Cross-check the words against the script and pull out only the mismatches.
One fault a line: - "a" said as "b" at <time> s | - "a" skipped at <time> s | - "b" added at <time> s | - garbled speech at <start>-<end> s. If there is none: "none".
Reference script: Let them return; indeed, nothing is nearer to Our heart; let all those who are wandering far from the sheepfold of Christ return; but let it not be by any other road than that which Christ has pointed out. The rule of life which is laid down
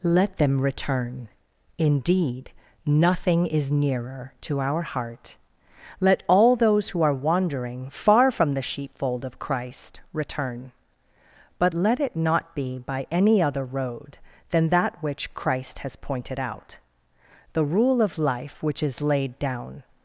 none